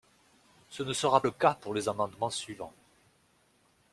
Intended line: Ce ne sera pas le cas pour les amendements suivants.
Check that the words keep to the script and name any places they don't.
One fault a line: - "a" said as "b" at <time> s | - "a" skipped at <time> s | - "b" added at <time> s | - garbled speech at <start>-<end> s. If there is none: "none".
- "pas" skipped at 1.2 s